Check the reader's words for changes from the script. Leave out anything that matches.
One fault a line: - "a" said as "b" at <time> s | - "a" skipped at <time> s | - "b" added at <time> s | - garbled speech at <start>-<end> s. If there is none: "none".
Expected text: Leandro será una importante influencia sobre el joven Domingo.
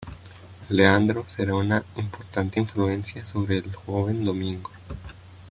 none